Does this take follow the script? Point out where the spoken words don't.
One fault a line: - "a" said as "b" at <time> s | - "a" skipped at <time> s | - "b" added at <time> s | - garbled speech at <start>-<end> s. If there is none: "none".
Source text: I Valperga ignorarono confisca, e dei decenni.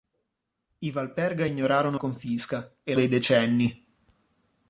none